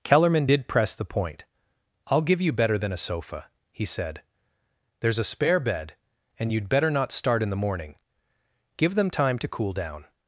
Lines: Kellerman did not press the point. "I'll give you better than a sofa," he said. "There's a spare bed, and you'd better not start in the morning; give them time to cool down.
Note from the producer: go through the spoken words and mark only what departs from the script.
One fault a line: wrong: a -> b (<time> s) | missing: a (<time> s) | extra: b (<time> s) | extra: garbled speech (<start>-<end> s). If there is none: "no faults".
missing: not (0.7 s)